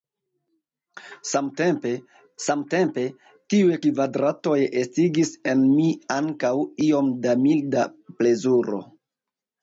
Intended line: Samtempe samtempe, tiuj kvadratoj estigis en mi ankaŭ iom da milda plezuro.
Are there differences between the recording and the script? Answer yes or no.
no